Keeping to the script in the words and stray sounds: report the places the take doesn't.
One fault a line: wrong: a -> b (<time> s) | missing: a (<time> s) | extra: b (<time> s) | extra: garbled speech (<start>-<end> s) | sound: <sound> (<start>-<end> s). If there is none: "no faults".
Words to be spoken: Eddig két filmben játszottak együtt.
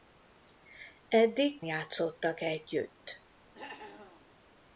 missing: két filmben (1.6 s)
sound: cough (3.5-4.3 s)